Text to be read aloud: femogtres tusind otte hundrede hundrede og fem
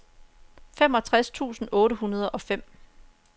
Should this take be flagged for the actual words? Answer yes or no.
yes